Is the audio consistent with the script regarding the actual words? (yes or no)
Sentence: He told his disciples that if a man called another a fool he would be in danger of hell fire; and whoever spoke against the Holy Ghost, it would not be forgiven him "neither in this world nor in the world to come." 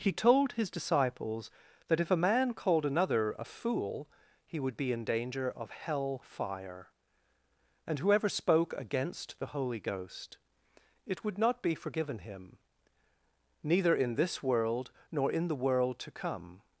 yes